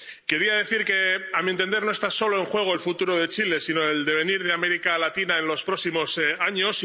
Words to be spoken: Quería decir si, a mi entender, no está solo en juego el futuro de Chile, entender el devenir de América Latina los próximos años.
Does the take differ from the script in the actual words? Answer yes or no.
yes